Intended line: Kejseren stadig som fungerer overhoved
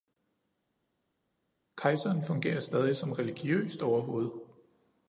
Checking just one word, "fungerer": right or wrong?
wrong